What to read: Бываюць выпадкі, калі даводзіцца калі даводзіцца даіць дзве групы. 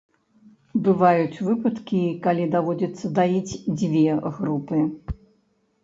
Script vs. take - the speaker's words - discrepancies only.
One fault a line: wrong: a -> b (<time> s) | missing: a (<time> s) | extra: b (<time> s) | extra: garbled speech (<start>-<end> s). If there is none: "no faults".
missing: калі даводзіцца (3.1 s)